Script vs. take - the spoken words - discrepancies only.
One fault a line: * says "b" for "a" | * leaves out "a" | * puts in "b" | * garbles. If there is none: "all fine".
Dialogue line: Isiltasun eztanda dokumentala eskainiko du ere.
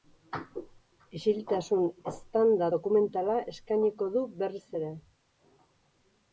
* puts in "berriz"